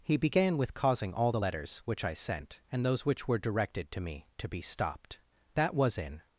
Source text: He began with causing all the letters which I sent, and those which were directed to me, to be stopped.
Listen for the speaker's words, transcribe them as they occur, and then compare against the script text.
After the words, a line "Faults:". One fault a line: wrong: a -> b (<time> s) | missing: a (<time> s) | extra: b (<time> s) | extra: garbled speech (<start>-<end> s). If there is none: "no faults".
He began with causing all the letters which I sent, and those which were directed to me, to be stopped. That was in
Faults:
extra: That was in (5.5 s)